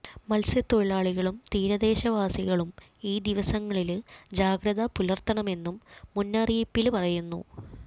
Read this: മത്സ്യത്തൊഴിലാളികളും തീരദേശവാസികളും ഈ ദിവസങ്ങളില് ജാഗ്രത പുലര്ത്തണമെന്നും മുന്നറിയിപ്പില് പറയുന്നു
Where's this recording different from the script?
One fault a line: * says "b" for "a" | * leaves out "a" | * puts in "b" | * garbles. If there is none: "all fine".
all fine